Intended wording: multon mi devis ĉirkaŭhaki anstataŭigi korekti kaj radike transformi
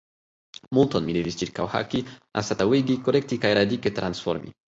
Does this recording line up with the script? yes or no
yes